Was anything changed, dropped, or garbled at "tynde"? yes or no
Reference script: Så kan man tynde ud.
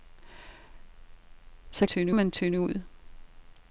no